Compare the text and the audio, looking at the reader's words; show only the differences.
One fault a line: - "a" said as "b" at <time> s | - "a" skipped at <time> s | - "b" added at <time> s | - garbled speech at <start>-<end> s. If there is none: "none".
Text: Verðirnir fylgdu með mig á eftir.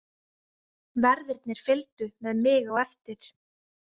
none